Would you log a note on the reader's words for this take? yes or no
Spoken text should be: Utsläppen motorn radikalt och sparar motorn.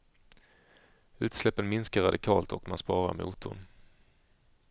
yes